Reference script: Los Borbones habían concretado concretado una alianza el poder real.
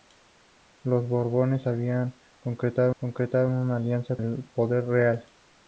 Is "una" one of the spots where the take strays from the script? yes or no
no